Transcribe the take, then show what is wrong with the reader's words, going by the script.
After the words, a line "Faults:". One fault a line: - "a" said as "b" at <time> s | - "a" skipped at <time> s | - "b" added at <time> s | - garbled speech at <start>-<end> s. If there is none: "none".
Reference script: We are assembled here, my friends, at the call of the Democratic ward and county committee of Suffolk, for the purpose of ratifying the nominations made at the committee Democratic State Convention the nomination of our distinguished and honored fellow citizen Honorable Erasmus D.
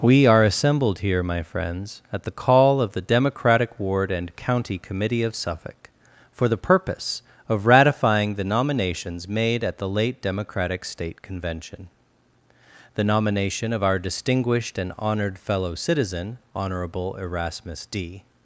We are assembled here, my friends, at the call of the Democratic ward and county committee of Suffolk, for the purpose of ratifying the nominations made at the late Democratic State Convention the nomination of our distinguished and honored fellow citizen Honorable Erasmus D.
Faults:
- "committee" said as "late" at 9.9 s